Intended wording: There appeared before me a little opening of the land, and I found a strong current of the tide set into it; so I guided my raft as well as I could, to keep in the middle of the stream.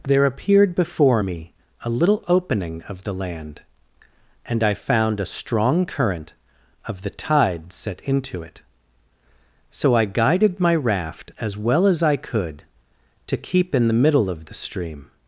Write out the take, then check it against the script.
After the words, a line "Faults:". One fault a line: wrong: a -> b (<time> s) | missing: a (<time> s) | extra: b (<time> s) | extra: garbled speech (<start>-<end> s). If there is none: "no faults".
There appeared before me a little opening of the land, and I found a strong current of the tide set into it; so I guided my raft as well as I could, to keep in the middle of the stream.
Faults:
no faults